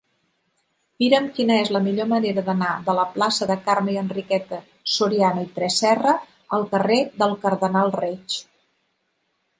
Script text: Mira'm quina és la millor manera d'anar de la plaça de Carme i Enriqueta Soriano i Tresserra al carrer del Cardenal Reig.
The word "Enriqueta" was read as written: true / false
true